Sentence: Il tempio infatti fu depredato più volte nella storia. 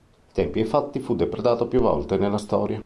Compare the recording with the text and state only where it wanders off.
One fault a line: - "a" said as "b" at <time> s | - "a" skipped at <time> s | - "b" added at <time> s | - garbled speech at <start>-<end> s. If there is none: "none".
none